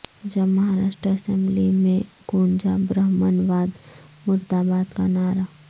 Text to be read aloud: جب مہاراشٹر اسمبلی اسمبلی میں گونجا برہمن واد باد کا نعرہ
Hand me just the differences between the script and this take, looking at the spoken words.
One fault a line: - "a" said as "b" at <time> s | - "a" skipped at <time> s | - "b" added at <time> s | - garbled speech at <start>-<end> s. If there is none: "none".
- "اسمبلی" skipped at 1.7 s
- "مردہ" added at 4.2 s